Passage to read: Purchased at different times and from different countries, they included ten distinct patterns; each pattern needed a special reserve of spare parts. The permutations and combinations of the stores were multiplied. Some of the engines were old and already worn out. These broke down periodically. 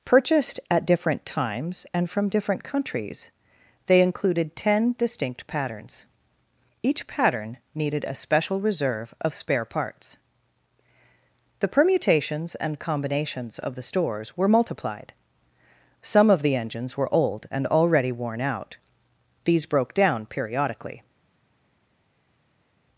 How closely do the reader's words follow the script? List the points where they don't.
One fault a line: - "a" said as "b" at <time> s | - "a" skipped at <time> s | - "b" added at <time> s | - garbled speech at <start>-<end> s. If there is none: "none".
none